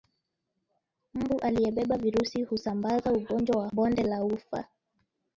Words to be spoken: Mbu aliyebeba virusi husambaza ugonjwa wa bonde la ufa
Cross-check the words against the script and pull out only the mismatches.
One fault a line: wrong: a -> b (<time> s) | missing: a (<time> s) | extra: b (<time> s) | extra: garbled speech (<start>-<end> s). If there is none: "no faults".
no faults